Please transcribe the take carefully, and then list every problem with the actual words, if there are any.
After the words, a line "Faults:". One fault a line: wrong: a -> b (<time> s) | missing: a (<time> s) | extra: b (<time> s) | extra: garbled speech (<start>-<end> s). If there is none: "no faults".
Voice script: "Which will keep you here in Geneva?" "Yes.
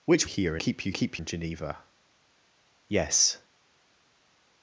"Which here keep you keep in Geneva?" "Yes.
Faults:
wrong: will -> here (0.2 s)
wrong: here -> keep (0.9 s)